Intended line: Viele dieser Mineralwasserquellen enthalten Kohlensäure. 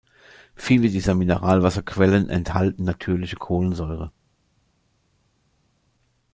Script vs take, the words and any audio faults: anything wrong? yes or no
yes